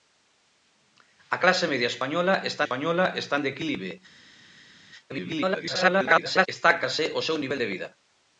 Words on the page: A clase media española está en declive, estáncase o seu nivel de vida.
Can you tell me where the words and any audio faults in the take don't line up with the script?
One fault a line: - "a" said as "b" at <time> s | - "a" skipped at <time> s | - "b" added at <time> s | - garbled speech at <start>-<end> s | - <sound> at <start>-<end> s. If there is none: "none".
- "española está" added at 2.6 s
- garbled speech at 5.1-6.5 s